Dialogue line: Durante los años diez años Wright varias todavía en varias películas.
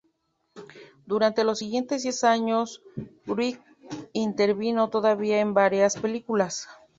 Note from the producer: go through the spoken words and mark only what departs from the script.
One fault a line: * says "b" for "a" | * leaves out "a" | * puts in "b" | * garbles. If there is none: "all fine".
* says "siguientes" for "años"
* says "intervino" for "varias"